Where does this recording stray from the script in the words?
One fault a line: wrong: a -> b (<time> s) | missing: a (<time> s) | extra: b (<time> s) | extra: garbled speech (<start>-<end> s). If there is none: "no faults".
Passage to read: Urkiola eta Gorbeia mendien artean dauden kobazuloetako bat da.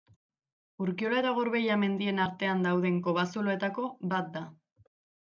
no faults